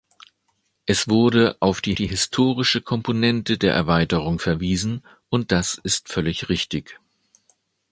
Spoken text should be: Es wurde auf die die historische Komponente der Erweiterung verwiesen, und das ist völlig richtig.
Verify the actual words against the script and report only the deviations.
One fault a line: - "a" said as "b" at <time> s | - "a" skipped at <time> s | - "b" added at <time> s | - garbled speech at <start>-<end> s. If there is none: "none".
none